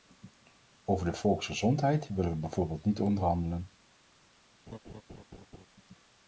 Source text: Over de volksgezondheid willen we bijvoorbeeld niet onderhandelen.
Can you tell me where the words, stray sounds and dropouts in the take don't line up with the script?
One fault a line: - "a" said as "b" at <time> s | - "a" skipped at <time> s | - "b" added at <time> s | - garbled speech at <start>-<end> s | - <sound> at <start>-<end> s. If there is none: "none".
- laugh at 4.7-5.7 s